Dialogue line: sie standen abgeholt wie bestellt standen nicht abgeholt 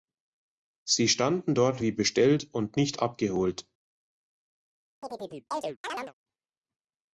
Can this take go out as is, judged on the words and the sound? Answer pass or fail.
fail